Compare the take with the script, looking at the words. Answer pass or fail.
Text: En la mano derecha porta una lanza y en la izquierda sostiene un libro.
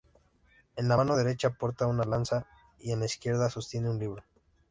pass